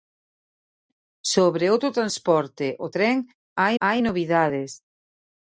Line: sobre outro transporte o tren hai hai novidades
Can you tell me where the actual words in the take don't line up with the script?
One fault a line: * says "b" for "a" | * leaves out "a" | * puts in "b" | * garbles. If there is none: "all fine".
all fine